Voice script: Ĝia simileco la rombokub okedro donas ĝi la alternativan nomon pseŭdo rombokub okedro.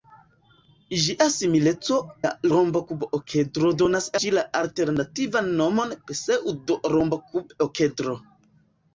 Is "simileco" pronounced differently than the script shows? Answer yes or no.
no